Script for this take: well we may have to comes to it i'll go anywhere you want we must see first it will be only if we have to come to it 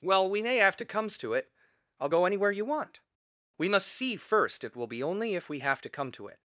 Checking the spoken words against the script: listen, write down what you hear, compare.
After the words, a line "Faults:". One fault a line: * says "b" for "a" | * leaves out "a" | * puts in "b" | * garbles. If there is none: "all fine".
well we may have to comes to it i'll go anywhere you want we must see first it will be only if we have to come to it
Faults:
all fine